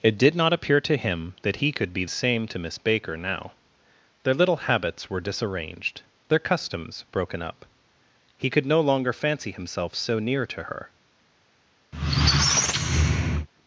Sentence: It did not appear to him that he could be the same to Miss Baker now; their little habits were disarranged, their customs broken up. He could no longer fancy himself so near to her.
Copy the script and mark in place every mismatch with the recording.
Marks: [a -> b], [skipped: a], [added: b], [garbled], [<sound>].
It did not appear to him that he could be [skipped: the] same to Miss Baker now; their little habits were disarranged, their customs broken up. He could no longer fancy himself so near to her. [squeak]